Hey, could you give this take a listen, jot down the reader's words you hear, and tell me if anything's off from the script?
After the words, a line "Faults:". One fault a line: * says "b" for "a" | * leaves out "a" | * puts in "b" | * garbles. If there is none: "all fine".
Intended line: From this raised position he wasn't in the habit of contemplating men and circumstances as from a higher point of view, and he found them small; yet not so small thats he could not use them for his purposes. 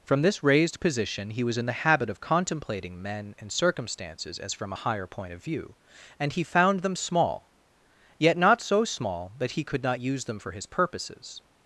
From this raised position he was in the habit of contemplating men and circumstances as from a higher point of view, and he found them small; yet not so small that he could not use them for his purposes.
Faults:
* says "was" for "wasn't"
* says "that" for "thats"